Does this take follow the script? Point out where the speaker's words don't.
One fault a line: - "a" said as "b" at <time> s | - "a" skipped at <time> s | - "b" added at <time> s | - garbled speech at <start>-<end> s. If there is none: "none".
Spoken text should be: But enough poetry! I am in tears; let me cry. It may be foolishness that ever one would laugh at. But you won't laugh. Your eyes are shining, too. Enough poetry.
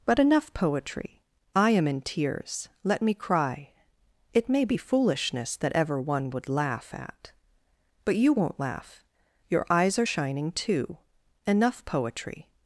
none